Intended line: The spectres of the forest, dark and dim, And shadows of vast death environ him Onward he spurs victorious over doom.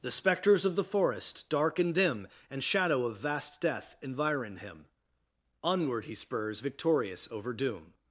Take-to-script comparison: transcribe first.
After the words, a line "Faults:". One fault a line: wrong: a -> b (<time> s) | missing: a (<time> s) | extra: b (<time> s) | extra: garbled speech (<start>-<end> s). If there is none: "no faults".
The spectres of the forest, dark and dim, And shadow of vast death environ him Onward he spurs victorious over doom.
Faults:
wrong: shadows -> shadow (2.6 s)